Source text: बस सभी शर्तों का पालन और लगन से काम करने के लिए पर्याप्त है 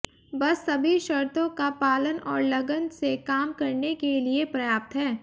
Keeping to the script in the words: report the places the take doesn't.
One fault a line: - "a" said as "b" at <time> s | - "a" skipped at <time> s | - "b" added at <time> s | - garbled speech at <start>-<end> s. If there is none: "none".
none